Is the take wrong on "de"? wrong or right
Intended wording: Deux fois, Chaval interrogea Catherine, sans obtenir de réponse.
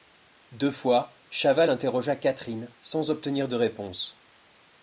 right